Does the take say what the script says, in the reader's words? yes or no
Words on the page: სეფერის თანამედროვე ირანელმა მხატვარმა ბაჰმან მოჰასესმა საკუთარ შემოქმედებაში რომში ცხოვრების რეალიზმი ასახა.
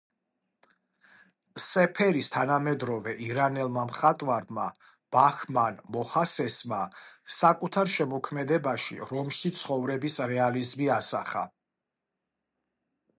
yes